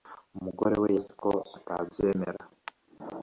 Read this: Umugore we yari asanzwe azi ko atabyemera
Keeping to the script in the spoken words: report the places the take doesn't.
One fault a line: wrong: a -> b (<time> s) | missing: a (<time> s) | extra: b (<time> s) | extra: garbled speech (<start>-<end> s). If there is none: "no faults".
missing: yari asanzwe (0.9 s)